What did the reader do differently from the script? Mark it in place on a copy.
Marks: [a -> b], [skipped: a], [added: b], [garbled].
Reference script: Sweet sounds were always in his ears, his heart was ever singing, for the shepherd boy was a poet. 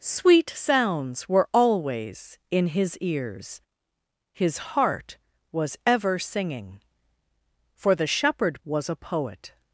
Sweet sounds were always in his ears, his heart was ever singing, for the shepherd [skipped: boy] was a poet.